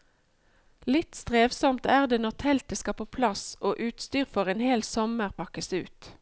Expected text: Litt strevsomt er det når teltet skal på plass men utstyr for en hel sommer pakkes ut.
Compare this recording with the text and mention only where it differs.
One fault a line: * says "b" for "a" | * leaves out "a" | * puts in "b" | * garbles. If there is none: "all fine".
* says "og" for "men"